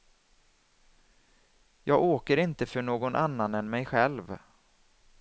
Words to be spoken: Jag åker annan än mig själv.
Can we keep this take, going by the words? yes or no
no